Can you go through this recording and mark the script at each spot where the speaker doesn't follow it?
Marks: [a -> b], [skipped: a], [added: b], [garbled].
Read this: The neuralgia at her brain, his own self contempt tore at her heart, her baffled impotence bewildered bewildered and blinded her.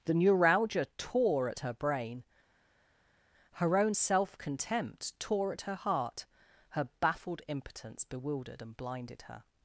The neuralgia [added: tore] at her brain, [his -> her] own self contempt tore at her heart, her baffled impotence bewildered [skipped: bewildered] and blinded her.